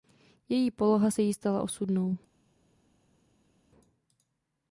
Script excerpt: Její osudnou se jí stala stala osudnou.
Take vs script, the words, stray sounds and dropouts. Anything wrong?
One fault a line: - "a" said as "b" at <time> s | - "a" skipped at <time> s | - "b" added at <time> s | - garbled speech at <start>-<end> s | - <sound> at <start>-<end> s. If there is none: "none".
- "osudnou" said as "poloha" at 0.7 s
- "stala" skipped at 1.6 s